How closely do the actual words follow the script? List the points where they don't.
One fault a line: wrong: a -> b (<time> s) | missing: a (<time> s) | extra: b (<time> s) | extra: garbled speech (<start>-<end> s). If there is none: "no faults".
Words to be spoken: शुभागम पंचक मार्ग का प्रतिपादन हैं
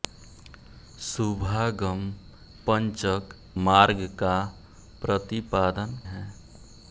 no faults